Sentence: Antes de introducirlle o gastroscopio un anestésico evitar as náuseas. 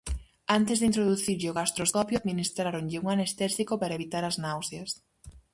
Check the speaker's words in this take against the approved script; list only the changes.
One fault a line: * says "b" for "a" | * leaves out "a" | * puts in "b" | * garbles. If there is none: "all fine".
* puts in "administráronlle"
* puts in "para"